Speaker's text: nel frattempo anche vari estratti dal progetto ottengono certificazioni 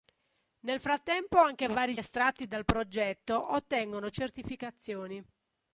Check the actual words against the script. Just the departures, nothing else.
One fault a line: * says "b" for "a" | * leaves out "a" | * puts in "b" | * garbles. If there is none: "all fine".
all fine